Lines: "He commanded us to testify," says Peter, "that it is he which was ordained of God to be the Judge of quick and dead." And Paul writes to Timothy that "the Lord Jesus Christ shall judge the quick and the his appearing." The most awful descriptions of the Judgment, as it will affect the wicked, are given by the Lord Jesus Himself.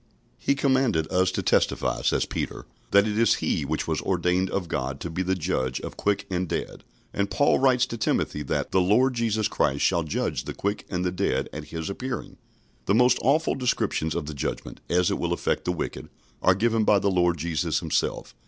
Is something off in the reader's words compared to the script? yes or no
yes